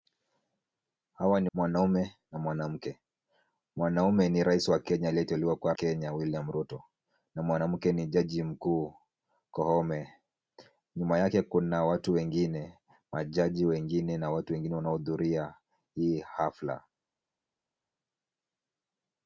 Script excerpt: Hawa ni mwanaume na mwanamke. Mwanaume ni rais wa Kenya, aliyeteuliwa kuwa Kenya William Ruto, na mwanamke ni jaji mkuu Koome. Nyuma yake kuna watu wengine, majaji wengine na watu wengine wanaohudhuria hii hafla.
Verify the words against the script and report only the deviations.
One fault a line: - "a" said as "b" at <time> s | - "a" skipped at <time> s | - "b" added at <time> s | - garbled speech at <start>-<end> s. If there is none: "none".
none